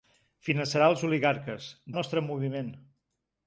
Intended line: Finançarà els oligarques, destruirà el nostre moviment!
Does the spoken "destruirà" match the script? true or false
false